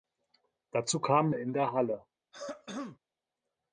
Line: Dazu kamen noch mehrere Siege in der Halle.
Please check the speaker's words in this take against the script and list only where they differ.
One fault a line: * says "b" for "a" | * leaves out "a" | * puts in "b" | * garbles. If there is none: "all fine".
* leaves out "noch mehrere Siege"